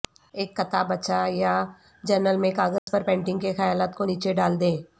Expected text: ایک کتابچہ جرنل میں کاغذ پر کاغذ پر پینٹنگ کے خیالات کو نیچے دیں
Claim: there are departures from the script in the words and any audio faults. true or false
true